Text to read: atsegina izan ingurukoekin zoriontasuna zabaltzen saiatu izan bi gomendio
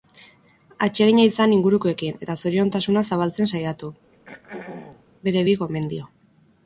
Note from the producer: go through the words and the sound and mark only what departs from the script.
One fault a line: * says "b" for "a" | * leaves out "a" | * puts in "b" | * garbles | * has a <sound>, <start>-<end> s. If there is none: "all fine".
* puts in "eta"
* has a throat clearing, 4.1-5.1 s
* says "bere" for "izan"